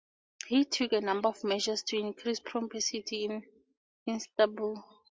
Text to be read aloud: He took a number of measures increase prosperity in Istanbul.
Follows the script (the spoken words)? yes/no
no